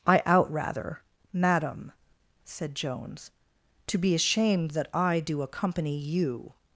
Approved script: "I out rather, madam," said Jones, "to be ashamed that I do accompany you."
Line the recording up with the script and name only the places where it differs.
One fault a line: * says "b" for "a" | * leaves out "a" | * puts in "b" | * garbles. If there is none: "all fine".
all fine